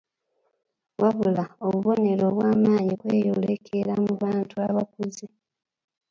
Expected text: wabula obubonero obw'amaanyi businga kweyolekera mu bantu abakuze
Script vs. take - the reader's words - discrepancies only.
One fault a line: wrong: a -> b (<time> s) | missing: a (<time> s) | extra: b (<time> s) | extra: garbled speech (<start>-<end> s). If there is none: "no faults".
missing: businga (2.9 s)